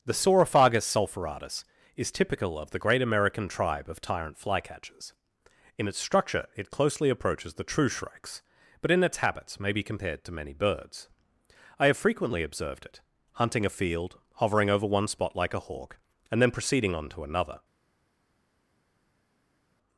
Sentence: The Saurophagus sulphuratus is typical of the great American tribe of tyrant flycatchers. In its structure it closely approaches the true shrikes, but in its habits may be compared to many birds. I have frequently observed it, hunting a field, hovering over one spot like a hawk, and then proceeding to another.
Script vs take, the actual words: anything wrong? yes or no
yes